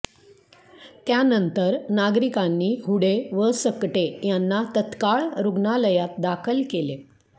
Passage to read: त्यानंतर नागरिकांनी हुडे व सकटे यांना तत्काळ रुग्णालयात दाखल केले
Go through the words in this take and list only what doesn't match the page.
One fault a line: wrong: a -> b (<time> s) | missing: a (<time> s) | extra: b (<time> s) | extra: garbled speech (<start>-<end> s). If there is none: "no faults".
no faults